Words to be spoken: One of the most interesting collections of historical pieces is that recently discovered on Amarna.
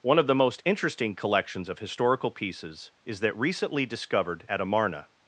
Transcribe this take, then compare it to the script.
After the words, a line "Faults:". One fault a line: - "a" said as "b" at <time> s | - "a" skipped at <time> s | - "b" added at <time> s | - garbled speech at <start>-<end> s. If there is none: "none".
One of the most interesting collections of historical pieces is that recently discovered at Amarna.
Faults:
- "on" said as "at" at 4.5 s